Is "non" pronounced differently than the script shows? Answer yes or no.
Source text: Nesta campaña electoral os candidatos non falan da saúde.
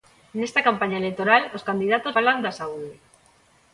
yes